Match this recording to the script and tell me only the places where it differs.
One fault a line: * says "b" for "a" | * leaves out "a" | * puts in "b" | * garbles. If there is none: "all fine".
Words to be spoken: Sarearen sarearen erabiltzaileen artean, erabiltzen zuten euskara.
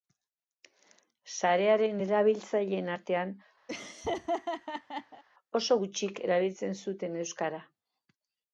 * leaves out "sarearen"
* puts in "oso gutxik"